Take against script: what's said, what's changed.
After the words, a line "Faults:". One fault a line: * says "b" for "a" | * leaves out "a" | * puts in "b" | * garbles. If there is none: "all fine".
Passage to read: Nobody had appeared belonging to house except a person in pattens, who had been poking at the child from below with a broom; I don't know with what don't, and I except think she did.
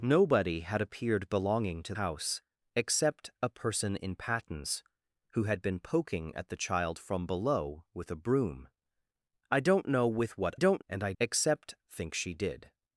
Nobody had appeared belonging to house except a person in pattens, who had been poking at the child from below with a broom; I don't know with what don't, and I except think she did.
Faults:
all fine